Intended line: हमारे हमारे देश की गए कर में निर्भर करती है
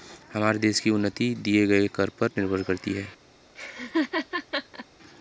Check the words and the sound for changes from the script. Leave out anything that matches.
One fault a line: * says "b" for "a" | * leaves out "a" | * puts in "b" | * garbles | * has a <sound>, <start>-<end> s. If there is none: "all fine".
* leaves out "हमारे"
* puts in "उन्नति दिए"
* says "पर" for "में"
* has a laugh, 3.5-4.9 s